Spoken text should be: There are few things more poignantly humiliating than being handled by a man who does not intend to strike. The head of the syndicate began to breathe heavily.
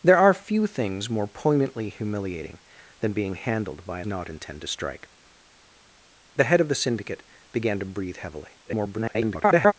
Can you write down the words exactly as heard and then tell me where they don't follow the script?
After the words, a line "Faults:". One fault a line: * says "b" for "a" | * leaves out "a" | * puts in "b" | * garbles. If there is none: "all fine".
There are few things more poignantly humiliating than being handled by a not intend to strike. The head of the syndicate began to breathe heavily. [garbled]
Faults:
* leaves out "man who does"
* garbles